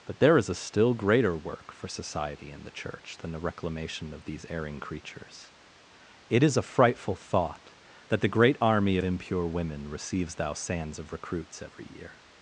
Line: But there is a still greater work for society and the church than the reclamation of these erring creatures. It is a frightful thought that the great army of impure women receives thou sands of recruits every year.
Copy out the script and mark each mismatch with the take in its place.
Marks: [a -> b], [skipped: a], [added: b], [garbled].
But there is a still greater work for society and the church than the reclamation of these erring creatures. It is a frightful thought that the great army [skipped: of] impure women receives thou sands of recruits every year.